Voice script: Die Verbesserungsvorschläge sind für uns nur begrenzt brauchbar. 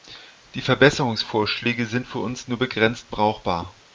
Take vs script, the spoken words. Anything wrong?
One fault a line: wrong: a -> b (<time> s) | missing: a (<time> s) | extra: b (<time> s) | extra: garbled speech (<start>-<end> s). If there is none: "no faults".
no faults